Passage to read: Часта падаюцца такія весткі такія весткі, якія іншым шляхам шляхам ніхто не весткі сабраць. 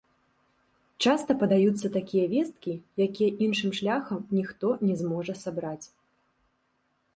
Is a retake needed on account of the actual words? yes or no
yes